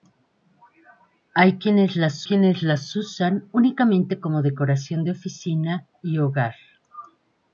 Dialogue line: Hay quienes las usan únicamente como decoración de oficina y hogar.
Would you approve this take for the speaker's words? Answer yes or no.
no